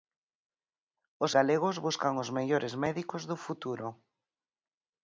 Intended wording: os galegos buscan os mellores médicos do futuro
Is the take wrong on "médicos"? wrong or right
right